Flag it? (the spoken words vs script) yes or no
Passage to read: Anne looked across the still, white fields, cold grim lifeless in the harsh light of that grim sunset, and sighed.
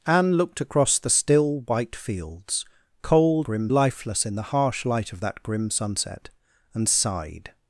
no